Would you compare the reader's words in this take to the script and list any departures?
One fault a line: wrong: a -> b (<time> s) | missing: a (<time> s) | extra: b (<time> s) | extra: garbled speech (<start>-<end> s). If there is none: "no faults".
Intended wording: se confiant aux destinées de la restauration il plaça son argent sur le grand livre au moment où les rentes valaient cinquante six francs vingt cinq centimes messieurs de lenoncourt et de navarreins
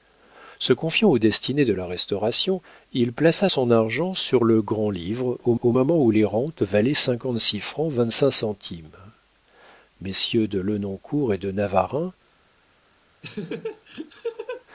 extra: au (5.6 s)